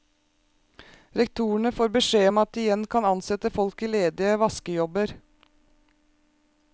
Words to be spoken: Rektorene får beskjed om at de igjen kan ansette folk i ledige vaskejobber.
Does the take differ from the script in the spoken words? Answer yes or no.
no